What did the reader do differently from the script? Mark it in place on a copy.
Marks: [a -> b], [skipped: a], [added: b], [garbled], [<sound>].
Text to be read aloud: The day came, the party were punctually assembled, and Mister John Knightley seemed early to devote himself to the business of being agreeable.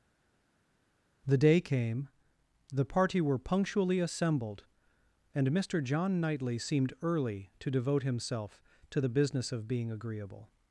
The day came, the party were punctually assembled, and Mister John Knightley seemed early to devote himself to the business of being agreeable.